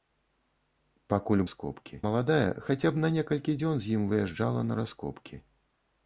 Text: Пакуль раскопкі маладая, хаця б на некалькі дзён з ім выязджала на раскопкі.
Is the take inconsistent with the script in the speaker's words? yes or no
no